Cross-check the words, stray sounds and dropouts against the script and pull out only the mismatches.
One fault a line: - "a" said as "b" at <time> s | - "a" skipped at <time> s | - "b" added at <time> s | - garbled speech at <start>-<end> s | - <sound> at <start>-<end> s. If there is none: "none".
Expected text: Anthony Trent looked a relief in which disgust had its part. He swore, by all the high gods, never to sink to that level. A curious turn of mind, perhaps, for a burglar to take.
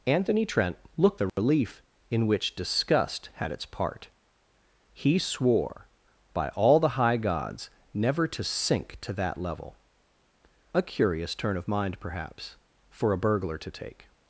- dropout at 1.3-1.4 s